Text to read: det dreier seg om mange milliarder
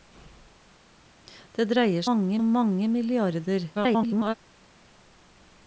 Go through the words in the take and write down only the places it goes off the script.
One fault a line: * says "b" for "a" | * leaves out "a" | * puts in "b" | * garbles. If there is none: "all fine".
* says "mange" for "seg"
* garbles